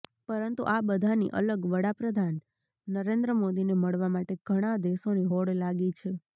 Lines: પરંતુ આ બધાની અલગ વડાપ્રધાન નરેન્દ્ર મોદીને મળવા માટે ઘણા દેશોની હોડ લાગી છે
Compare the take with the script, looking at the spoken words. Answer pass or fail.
pass